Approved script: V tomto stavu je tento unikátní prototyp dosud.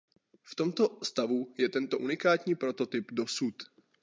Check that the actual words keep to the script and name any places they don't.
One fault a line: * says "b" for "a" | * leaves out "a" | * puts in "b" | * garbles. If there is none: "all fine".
all fine